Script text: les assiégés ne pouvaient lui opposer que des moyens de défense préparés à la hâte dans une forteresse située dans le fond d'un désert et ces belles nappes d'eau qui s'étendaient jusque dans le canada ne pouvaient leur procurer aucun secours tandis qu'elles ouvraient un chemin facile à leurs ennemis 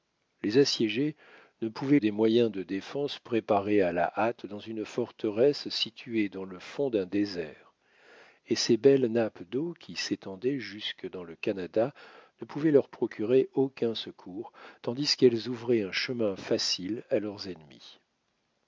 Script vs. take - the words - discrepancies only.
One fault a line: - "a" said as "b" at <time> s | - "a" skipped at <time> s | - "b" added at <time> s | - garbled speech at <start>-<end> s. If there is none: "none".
- "lui opposer que" skipped at 2.0 s